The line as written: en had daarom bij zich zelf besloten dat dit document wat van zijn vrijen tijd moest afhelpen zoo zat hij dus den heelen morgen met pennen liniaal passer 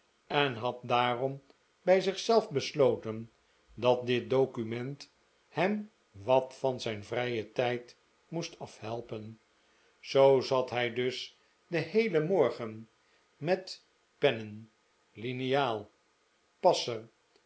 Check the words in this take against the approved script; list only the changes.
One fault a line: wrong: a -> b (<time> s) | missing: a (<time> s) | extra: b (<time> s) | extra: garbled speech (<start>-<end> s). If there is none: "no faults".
extra: hem (5.5 s)